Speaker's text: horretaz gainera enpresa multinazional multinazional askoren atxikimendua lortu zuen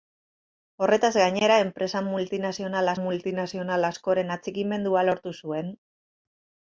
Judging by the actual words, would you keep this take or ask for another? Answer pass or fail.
pass